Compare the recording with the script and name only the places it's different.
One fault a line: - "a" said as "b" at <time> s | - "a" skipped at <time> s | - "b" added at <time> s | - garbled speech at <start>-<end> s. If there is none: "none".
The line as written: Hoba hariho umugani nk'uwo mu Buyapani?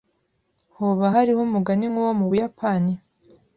none